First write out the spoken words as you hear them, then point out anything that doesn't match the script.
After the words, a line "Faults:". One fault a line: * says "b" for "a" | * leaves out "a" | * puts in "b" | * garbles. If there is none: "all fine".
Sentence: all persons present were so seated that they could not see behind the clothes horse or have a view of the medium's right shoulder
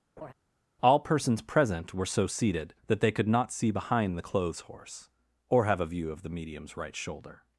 all persons present were so seated that they could not see behind the clothes horse or have a view of the medium's right shoulder
Faults:
all fine